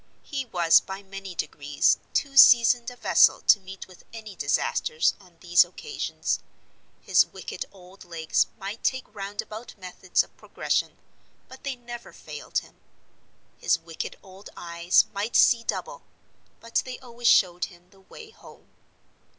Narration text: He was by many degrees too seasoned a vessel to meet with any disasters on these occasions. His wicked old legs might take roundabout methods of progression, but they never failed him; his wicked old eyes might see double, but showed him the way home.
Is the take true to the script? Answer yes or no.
no